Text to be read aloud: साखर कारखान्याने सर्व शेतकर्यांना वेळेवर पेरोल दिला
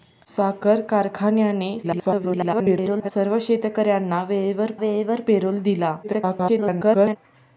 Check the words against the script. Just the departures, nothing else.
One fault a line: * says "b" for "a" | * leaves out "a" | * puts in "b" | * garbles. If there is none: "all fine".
* garbles
* puts in "वेळेवर"
* garbles